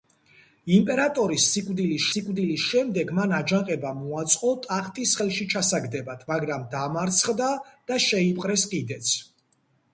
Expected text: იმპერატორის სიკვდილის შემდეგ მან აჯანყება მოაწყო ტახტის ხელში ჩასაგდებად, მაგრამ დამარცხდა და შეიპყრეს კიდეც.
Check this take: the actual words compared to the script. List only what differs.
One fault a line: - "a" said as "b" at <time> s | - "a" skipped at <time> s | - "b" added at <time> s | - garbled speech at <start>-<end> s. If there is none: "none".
- "სიკვდილის" added at 2.1 s